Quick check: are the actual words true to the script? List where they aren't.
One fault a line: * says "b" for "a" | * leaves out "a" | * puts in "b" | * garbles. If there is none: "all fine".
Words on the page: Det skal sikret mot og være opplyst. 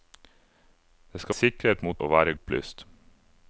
all fine